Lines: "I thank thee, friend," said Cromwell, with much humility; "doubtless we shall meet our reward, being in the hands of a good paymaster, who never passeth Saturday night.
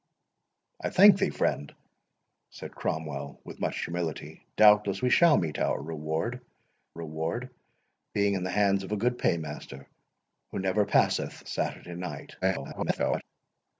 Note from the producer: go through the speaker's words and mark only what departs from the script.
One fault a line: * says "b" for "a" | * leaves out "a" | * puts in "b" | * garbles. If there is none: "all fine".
* puts in "reward"
* garbles